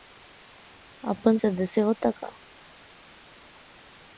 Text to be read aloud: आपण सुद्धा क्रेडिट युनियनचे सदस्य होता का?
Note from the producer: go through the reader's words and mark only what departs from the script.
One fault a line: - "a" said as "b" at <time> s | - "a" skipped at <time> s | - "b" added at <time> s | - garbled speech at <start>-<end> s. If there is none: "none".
- "सुद्धा क्रेडिट युनियनचे" skipped at 1.4 s